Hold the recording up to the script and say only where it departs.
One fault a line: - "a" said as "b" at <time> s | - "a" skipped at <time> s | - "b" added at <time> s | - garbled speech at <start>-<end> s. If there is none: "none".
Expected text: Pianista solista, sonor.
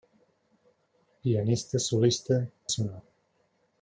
none